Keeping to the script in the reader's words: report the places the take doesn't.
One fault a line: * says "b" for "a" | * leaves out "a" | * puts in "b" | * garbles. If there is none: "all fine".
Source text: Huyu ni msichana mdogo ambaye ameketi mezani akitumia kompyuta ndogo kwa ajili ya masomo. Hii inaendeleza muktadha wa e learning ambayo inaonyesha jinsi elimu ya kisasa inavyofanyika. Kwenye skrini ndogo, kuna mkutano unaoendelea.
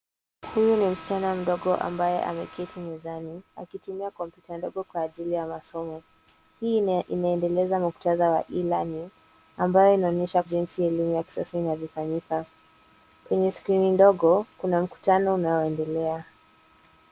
all fine